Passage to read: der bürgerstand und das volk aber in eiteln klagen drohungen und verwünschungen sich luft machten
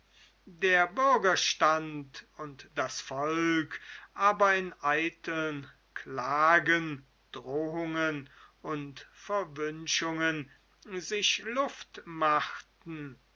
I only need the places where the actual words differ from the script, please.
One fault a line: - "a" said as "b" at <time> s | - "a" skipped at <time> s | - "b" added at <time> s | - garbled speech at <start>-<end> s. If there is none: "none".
none